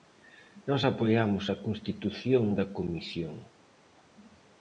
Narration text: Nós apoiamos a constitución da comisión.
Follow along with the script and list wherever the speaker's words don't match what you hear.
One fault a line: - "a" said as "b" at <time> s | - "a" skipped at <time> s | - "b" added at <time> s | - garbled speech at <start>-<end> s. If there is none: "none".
none